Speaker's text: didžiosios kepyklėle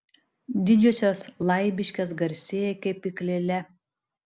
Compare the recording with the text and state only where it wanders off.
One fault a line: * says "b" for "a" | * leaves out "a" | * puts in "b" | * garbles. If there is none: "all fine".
* puts in "laibiškės garsėja"